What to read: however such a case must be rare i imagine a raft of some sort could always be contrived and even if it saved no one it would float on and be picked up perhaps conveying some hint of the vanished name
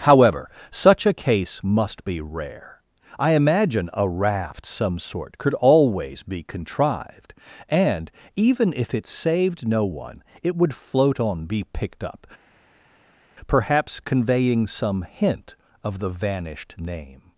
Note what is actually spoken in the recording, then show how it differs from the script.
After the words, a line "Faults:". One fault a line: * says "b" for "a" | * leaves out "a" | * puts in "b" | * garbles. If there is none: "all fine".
however such a case must be rare i imagine a raft some sort could always be contrived and even if it saved no one it would float on be picked up perhaps conveying some hint of the vanished name
Faults:
* leaves out "of"
* leaves out "and"